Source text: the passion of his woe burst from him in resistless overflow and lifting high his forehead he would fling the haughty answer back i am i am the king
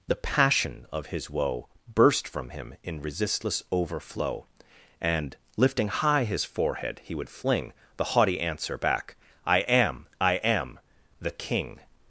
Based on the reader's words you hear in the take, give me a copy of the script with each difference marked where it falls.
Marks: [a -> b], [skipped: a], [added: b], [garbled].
the passion of his woe burst from him in resistless overflow and lifting high his forehead he would fling the haughty answer back i am i am the king